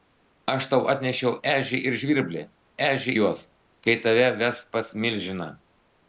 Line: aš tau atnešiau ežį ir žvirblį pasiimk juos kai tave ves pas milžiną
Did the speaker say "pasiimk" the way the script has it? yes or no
no